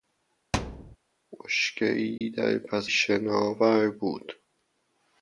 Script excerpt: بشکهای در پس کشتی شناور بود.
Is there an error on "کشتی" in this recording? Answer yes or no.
yes